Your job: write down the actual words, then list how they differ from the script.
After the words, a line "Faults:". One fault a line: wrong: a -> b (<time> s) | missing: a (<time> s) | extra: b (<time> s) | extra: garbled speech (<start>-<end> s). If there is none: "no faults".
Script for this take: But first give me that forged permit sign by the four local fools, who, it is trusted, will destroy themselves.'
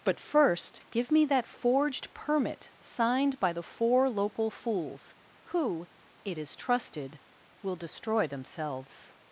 But first give me that forged permit signed by the four local fools, who, it is trusted, will destroy themselves.'
Faults:
wrong: sign -> signed (2.8 s)